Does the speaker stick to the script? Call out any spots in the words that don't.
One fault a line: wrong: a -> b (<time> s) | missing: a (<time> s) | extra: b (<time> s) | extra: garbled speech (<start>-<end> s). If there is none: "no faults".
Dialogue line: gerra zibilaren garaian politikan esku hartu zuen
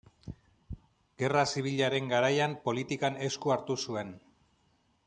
no faults